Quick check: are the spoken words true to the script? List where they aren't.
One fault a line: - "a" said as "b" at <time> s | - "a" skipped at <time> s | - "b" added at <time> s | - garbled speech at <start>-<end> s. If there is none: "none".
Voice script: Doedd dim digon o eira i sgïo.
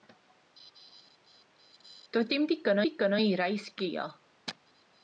- "digon" added at 2.9 s